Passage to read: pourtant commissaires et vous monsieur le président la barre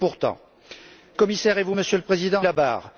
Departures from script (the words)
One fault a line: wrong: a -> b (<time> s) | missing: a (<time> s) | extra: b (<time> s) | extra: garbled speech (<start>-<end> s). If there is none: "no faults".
no faults